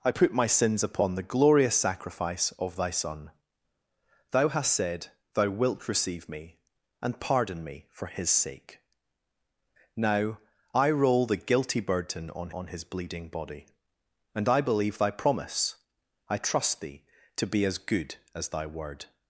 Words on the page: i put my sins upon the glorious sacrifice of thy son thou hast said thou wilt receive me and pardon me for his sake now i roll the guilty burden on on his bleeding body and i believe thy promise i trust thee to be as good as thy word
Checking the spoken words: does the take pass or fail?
pass